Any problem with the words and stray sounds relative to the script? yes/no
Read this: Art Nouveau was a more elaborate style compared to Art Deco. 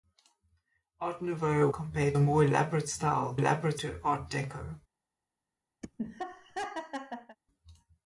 yes